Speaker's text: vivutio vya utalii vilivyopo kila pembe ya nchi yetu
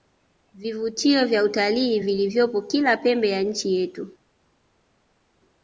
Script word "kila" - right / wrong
right